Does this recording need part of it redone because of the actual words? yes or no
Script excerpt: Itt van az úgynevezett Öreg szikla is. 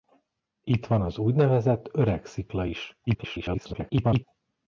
yes